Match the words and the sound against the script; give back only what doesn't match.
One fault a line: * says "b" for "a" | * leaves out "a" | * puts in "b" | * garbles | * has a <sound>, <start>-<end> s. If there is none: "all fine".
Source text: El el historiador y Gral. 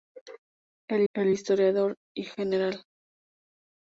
all fine